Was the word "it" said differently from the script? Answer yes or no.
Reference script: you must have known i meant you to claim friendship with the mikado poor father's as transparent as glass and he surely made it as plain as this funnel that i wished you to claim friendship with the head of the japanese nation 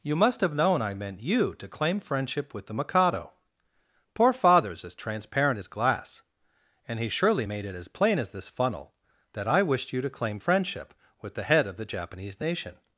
no